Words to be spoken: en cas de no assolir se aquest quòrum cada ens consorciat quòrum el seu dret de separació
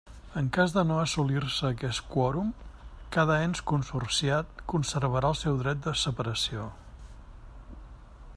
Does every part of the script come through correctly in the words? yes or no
no